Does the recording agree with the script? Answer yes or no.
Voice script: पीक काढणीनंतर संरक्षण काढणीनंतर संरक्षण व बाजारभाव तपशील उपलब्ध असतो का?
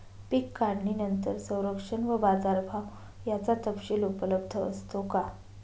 no